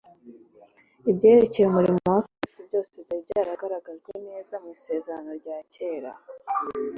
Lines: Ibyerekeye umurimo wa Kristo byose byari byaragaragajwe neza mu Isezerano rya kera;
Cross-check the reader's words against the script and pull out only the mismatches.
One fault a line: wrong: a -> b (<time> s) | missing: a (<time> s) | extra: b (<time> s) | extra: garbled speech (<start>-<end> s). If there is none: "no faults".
no faults